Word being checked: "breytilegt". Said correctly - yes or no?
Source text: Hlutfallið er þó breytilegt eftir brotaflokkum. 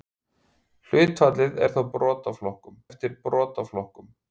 no